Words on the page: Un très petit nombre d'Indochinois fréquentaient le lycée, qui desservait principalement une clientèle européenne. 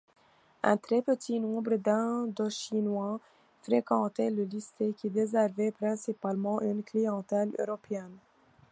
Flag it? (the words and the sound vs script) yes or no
no